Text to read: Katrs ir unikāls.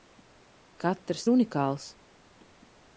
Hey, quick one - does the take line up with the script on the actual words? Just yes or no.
yes